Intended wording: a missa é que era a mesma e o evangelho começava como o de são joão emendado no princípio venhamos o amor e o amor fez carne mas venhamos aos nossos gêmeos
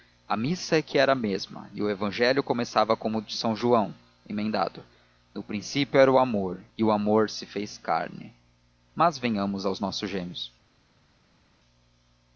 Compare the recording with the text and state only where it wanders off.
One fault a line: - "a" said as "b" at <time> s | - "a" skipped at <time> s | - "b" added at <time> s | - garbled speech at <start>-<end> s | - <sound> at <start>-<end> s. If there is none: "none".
- "venhamos" said as "era" at 6.0 s
- "se" added at 7.3 s